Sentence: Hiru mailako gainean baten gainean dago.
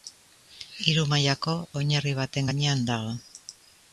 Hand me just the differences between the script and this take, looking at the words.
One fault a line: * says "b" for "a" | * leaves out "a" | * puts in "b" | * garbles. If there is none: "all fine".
* says "oinarri" for "gainean"